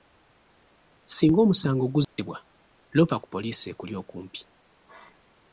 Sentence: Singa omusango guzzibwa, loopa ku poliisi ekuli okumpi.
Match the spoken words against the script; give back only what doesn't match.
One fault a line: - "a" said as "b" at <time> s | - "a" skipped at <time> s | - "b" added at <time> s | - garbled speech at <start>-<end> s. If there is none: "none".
none